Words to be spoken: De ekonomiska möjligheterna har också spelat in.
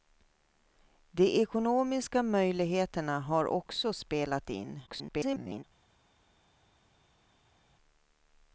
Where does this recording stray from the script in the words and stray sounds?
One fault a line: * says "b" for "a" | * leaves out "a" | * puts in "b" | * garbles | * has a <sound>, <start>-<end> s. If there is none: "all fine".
* garbles